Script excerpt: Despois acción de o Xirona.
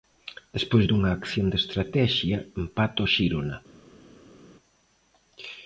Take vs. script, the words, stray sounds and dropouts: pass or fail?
fail